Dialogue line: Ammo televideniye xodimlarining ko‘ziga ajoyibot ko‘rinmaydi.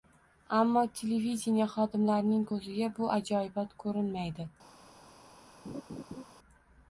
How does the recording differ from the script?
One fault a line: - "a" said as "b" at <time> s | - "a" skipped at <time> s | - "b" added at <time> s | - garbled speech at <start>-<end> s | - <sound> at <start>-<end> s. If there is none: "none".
- "bu" added at 3.0 s
- laugh at 5.6-6.2 s